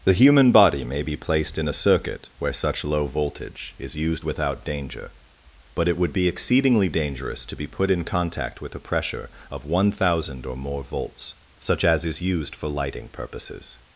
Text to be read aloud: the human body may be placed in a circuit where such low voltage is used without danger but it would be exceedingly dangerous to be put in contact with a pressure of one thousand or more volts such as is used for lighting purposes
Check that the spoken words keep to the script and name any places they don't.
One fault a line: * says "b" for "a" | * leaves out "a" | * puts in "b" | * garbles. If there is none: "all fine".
all fine